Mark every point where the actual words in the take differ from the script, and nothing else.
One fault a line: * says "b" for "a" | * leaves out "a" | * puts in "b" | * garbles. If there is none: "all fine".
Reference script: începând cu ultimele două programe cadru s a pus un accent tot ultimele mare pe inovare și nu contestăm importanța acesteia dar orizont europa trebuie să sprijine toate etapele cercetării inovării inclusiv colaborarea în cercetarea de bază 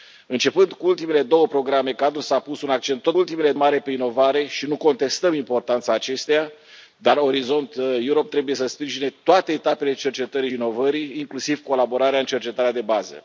all fine